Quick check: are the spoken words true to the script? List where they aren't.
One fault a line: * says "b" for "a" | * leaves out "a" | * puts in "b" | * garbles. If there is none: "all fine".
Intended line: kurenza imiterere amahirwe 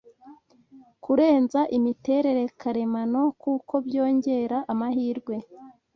* puts in "karemano kuko byongera"